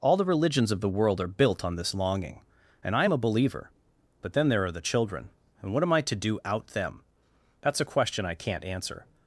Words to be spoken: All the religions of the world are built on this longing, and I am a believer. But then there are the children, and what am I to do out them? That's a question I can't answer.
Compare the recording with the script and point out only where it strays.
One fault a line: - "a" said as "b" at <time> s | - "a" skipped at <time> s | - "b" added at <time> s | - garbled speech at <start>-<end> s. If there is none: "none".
none